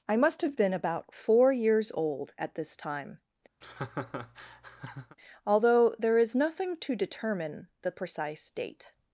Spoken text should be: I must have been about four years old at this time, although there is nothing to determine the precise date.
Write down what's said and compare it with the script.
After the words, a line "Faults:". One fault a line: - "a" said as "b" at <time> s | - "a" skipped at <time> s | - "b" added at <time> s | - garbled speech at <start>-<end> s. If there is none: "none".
I must have been about four years old at this time, although there is nothing to determine the precise date.
Faults:
none